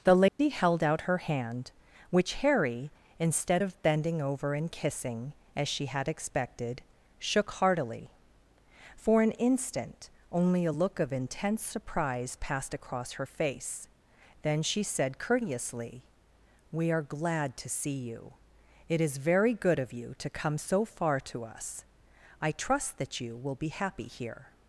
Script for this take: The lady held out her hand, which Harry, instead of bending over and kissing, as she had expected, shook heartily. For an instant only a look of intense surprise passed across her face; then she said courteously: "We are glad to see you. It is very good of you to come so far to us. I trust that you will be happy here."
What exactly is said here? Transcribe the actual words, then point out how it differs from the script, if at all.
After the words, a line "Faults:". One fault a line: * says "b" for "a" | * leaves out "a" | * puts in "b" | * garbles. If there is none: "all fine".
The lady held out her hand, which Harry, instead of bending over and kissing, as she had expected, shook heartily. For an instant only a look of intense surprise passed across her face; then she said courteously: "We are glad to see you. It is very good of you to come so far to us. I trust that you will be happy here."
Faults:
all fine